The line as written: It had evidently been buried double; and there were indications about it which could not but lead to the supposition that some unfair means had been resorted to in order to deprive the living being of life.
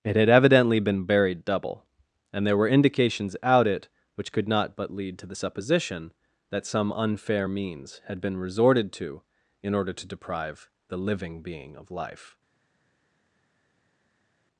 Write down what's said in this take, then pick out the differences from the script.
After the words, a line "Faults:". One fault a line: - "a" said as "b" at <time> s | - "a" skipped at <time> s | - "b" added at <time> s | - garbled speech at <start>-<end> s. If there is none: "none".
It had evidently been buried double; and there were indications out it which could not but lead to the supposition that some unfair means had been resorted to in order to deprive the living being of life.
Faults:
- "about" said as "out" at 3.4 s